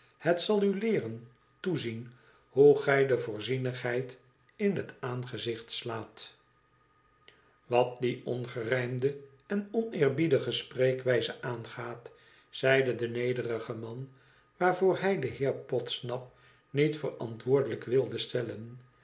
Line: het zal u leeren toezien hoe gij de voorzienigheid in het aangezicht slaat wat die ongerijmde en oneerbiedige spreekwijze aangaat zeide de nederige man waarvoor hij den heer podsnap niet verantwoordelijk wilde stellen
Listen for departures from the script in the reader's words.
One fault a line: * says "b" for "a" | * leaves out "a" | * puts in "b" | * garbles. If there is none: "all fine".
all fine